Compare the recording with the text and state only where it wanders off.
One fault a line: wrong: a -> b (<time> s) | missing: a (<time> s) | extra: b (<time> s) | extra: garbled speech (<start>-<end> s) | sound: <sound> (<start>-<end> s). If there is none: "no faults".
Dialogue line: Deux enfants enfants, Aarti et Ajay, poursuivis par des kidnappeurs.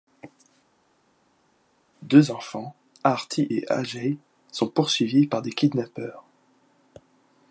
missing: enfants (2.8 s)
extra: sont (4.5 s)